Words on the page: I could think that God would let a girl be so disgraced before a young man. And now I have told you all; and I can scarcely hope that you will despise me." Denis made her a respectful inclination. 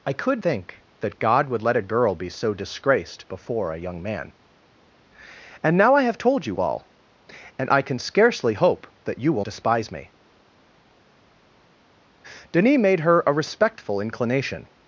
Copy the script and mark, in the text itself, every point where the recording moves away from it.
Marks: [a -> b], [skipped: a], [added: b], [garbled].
I could think that God would let a girl be so disgraced before a young man. And now I have told you all; and I can scarcely hope that you will despise me." Denis made her a respectful inclination.